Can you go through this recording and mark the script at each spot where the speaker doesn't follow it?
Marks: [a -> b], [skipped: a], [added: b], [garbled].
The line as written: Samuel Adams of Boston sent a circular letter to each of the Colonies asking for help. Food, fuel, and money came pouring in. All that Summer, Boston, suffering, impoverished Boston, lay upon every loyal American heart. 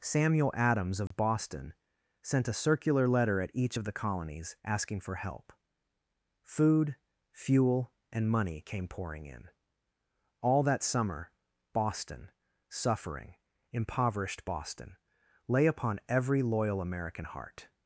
Samuel Adams of Boston sent a circular letter [to -> at] each of the Colonies asking for help. Food, fuel, and money came pouring in. All that Summer, Boston, suffering, impoverished Boston, lay upon every loyal American heart.